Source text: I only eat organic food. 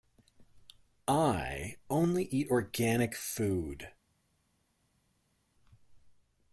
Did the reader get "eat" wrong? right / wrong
right